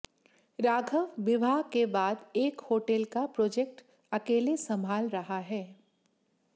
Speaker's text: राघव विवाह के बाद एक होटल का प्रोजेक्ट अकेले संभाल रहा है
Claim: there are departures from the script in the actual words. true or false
false